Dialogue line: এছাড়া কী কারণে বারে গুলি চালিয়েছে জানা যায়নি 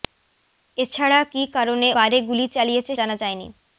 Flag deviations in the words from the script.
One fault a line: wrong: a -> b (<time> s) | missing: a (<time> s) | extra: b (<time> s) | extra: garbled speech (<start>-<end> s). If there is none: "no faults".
no faults